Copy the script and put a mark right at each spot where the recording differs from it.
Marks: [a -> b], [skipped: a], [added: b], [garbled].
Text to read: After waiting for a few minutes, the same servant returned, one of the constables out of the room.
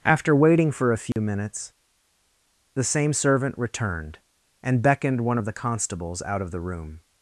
After waiting for a few minutes, the same servant returned, [added: and beckoned] one of the constables out of the room.